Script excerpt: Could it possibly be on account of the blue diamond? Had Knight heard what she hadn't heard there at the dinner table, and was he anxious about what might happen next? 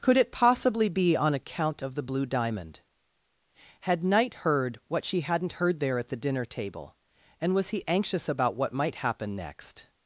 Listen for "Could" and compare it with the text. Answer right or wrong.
right